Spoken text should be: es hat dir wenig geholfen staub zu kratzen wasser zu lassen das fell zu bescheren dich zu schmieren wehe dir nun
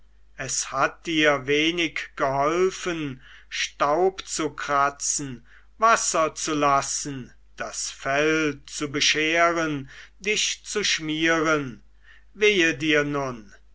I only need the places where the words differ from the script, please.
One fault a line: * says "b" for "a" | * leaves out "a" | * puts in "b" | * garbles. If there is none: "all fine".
all fine